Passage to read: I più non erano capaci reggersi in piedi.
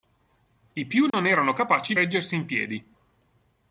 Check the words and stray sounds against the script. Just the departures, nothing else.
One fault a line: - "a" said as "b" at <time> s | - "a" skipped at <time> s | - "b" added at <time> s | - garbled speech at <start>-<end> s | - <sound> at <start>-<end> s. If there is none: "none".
- dropout at 1.1-1.1 s